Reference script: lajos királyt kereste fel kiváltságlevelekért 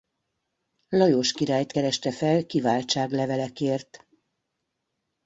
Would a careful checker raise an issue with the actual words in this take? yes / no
no